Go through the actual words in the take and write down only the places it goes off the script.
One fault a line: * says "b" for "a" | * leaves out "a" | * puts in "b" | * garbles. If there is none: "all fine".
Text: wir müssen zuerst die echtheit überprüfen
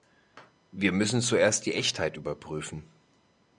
all fine